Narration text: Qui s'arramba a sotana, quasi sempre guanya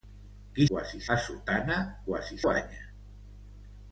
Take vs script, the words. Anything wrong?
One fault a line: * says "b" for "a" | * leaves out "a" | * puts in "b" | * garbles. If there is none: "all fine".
* says "quasi" for "s'arramba"
* leaves out "sempre"